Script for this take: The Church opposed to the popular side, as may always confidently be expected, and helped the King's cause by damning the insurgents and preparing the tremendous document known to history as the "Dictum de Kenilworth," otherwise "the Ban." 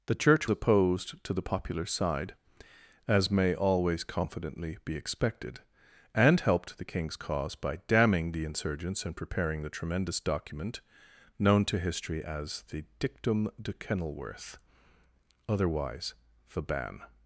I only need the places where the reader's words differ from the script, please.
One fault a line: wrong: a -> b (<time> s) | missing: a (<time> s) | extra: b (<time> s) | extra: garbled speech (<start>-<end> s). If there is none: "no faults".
no faults